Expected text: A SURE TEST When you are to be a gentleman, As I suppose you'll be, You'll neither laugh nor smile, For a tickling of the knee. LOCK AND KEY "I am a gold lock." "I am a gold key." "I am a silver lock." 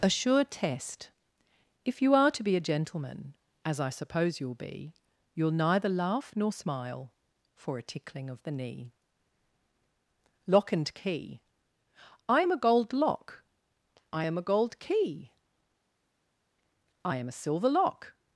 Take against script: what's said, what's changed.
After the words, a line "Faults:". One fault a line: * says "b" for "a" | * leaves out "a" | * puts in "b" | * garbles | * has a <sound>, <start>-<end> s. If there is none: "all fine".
A SURE TEST If you are to be a gentleman, As I suppose you'll be, You'll neither laugh nor smile, For a tickling of the knee. LOCK AND KEY "I am a gold lock." "I am a gold key." "I am a silver lock."
Faults:
* says "If" for "When"